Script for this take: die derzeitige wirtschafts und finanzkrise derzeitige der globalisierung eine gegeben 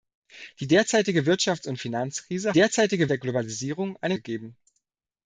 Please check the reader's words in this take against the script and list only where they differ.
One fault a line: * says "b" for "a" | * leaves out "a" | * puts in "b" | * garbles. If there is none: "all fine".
all fine